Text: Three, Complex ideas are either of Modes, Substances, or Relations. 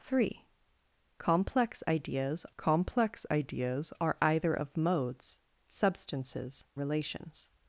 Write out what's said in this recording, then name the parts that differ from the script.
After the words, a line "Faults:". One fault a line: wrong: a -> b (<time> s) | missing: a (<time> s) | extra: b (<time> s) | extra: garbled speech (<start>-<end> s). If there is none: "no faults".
Three, Complex ideas Complex ideas are either of Modes, Substances, Relations.
Faults:
extra: Complex ideas (2.6 s)
missing: or (6.6 s)